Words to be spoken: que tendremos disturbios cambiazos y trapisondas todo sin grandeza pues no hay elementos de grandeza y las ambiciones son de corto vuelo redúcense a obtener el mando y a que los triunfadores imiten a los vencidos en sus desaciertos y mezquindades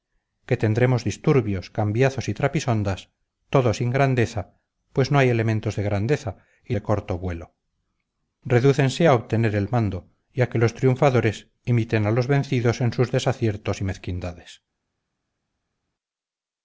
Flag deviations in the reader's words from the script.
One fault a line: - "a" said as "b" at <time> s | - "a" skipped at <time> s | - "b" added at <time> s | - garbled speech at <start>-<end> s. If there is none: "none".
- "las ambiciones son" skipped at 6.7 s